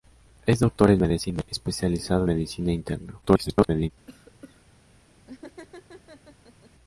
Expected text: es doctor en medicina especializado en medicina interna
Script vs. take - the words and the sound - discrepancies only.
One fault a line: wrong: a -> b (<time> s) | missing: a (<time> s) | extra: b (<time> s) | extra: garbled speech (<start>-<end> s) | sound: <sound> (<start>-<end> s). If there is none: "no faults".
missing: en (2.2 s)
extra: garbled speech (3.2-3.9 s)
sound: cough (4.1-4.6 s)
sound: laugh (5.3-6.7 s)